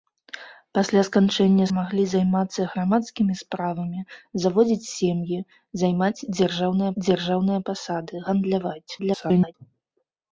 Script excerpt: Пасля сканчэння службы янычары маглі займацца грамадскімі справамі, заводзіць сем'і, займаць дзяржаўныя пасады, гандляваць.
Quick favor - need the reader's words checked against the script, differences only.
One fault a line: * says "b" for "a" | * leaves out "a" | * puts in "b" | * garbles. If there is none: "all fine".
* leaves out "службы янычары"
* puts in "дзяржаўныя"
* garbles